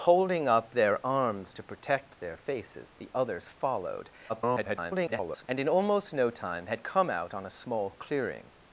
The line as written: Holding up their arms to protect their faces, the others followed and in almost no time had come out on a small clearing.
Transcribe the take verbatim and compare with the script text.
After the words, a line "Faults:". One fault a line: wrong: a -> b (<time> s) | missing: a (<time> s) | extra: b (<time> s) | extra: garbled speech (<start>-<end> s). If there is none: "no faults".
Holding up their arms to protect their faces, the others followed [garbled] and in almost no time had come out on a small clearing.
Faults:
extra: garbled speech (4.3-5.5 s)